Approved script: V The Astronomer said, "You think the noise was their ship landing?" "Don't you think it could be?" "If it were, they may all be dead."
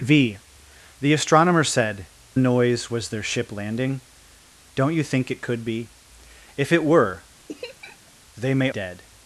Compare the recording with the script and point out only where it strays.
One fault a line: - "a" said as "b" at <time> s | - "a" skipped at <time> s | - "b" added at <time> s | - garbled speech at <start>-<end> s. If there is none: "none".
- "You think the" skipped at 2.1 s
- "all be" skipped at 8.7 s